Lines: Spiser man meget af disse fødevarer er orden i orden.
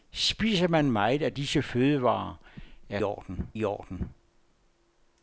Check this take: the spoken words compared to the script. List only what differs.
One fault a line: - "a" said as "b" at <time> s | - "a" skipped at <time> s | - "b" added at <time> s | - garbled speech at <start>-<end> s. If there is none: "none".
none